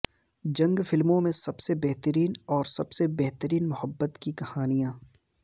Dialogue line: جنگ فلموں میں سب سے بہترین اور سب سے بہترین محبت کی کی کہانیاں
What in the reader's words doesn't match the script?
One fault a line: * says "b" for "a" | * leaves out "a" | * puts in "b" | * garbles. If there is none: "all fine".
* leaves out "کی"